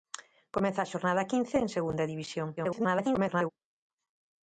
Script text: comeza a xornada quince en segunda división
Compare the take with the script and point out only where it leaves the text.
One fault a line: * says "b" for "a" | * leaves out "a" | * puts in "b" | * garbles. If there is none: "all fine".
* garbles